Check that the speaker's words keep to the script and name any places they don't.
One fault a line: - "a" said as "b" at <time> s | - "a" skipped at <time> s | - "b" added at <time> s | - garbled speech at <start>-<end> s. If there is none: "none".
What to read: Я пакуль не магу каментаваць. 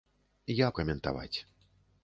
- "пакуль не магу" skipped at 0.7 s